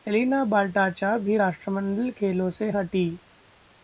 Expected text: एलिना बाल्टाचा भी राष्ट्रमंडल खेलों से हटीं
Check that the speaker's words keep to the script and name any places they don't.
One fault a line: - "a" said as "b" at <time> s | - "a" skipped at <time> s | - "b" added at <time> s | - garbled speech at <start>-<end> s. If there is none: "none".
none